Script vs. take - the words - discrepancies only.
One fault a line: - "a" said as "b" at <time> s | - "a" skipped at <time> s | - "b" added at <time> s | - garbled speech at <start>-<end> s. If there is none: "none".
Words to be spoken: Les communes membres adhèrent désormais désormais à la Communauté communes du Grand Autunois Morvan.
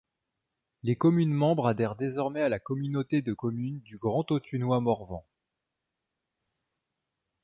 - "désormais" skipped at 2.4 s
- "de" added at 3.2 s